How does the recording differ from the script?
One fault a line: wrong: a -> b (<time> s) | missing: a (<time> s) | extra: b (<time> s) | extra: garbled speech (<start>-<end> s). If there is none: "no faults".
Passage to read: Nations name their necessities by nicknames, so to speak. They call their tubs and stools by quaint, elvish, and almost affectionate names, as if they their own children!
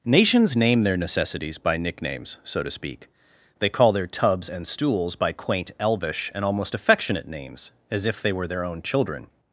extra: were (8.3 s)